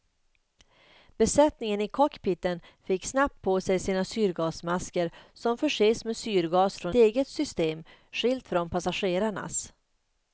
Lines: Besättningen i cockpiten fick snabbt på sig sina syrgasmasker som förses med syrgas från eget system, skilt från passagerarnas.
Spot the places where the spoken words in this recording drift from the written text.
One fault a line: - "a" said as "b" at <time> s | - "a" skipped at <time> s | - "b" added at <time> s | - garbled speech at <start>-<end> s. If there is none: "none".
none